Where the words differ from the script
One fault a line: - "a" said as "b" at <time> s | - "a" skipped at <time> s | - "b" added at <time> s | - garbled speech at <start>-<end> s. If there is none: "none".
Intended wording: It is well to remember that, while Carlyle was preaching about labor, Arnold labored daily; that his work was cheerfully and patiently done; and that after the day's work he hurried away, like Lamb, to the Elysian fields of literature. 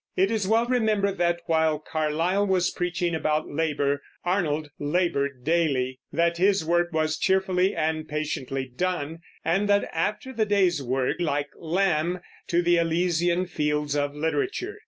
- "to" skipped at 0.7 s
- "he hurried away" skipped at 11.2 s